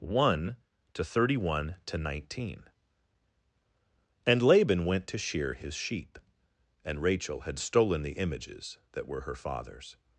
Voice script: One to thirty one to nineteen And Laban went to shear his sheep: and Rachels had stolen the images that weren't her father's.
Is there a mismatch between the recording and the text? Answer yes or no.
yes